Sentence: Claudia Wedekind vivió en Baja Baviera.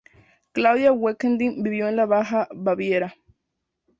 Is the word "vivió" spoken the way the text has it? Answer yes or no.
yes